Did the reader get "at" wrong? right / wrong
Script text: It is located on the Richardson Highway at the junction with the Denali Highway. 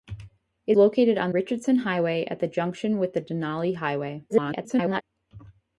right